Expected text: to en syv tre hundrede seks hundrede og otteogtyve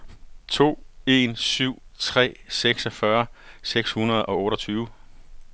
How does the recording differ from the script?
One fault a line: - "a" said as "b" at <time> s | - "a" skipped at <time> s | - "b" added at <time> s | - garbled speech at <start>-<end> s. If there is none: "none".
- "hundrede" said as "seksogfyrre" at 2.5 s